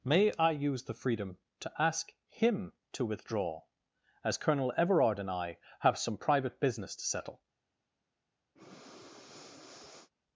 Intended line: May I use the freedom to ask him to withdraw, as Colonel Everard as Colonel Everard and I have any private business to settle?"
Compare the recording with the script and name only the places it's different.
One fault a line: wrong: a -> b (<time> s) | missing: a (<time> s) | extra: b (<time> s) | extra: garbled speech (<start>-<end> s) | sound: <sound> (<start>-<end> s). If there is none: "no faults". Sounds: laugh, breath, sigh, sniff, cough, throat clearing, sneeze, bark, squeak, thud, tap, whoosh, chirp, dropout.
missing: as Colonel Everard (5.2 s)
wrong: any -> some (6.0 s)
sound: breath (8.6-10.1 s)